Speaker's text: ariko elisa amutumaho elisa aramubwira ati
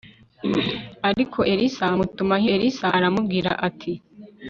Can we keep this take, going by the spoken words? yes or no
yes